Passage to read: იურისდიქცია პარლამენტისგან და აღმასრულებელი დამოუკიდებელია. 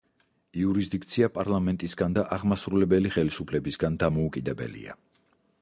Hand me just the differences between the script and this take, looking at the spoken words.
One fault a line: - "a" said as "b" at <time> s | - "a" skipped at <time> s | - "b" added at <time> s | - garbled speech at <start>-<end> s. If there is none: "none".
- "ხელისუფლებისგან" added at 3.1 s